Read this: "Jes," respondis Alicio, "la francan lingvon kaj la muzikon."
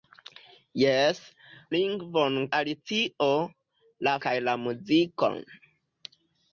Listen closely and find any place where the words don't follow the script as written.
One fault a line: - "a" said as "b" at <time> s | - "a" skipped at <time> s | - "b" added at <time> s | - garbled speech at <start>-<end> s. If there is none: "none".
- "respondis" said as "lingvon" at 1.8 s
- "francan lingvon" skipped at 4.1 s